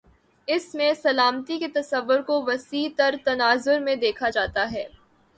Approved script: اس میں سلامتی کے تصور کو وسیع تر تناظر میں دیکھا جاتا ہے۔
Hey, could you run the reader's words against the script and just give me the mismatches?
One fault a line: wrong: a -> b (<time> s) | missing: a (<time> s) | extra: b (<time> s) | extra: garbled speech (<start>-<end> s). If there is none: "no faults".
no faults